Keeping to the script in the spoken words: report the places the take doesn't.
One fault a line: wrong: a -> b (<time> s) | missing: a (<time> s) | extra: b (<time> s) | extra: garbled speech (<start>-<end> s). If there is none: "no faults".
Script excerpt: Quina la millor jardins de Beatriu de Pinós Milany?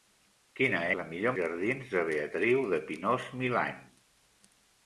no faults